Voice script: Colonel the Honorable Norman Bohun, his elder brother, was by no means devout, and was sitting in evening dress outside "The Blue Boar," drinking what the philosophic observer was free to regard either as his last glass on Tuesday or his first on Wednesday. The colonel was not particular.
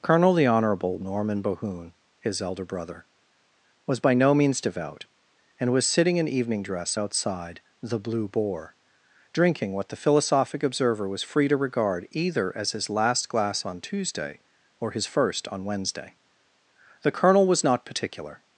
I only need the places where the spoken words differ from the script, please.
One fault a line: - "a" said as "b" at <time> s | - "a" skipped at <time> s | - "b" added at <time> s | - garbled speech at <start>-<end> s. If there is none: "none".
none